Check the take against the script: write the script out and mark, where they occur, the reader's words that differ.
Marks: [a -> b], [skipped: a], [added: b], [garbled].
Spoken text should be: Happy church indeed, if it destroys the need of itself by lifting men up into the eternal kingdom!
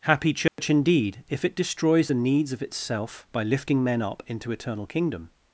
Happy church indeed, if it destroys the [need -> needs] of itself by lifting men up into [skipped: the] eternal kingdom!